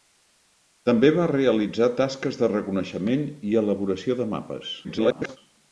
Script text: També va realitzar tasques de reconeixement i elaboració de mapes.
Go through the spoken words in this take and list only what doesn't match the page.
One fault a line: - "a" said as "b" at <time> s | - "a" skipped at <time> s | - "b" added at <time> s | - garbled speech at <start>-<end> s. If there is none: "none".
- garbled speech at 4.8-5.4 s